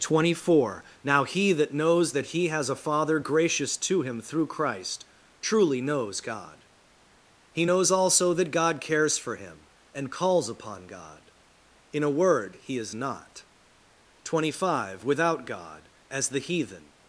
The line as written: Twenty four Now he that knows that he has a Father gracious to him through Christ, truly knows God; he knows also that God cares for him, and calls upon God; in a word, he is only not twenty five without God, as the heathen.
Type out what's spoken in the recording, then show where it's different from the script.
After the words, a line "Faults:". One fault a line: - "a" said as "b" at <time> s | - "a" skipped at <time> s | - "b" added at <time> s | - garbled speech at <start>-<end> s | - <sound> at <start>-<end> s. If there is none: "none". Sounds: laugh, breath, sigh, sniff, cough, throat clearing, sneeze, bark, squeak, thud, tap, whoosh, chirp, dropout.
Twenty four Now he that knows that he has a Father gracious to him through Christ, truly knows God; he knows also that God cares for him, and calls upon God; in a word, he is not twenty five without God, as the heathen.
Faults:
- "only" skipped at 13.0 s